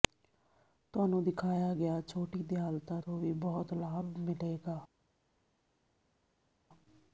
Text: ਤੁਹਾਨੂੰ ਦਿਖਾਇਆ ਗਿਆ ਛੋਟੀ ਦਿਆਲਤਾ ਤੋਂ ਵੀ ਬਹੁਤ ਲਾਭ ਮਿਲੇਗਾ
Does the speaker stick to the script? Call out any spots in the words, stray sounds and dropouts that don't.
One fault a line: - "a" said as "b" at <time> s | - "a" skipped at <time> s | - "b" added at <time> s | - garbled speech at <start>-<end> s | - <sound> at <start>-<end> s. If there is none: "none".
none